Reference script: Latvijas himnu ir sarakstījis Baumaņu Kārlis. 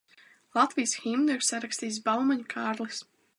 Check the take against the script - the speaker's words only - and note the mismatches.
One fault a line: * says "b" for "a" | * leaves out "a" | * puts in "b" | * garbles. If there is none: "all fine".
all fine